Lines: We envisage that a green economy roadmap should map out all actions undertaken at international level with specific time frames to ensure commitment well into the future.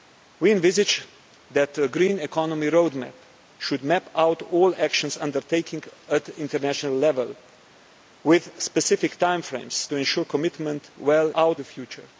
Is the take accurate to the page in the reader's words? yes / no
no